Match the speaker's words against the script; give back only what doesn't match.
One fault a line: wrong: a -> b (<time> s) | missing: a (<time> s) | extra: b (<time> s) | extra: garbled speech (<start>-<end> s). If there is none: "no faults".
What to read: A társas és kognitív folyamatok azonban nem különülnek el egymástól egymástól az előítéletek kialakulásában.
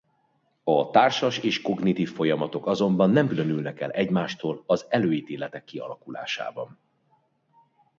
missing: egymástól (4.6 s)